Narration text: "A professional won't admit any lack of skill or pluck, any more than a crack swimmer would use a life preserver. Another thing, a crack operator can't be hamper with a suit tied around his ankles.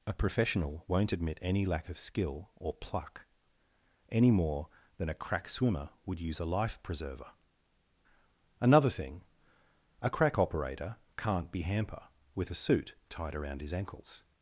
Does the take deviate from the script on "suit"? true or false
false